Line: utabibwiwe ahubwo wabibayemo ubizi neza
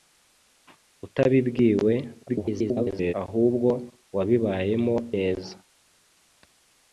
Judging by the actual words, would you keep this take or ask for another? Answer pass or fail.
fail